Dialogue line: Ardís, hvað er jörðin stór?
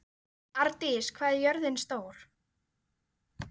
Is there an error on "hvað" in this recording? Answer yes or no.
no